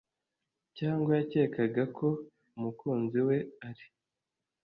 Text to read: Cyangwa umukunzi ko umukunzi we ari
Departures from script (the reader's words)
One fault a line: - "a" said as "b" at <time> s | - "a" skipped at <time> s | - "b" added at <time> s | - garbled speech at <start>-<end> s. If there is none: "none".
- "umukunzi" said as "yakekaga" at 1.2 s